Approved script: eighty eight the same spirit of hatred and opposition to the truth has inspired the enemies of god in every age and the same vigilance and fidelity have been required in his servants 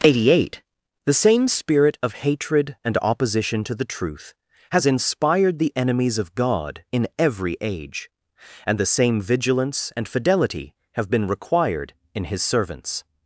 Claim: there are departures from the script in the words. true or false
false